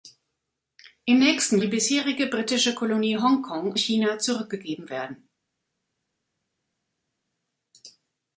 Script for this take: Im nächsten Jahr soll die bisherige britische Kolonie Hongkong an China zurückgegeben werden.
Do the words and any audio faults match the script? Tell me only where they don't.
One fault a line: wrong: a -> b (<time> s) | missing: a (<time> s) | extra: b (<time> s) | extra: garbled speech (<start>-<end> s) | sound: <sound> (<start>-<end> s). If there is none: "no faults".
missing: Jahr soll (1.6 s)
missing: an (3.7 s)